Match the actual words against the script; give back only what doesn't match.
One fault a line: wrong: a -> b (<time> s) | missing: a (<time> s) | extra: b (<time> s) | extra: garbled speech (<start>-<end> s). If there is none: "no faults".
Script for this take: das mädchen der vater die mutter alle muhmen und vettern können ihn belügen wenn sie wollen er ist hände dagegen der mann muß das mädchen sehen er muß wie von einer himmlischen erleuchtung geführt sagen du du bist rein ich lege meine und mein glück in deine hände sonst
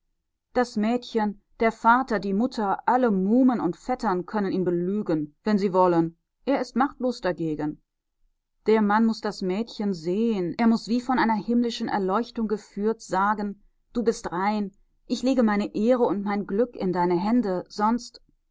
wrong: hände -> machtlos (6.8 s)
missing: du (14.0 s)
extra: ehre (15.7 s)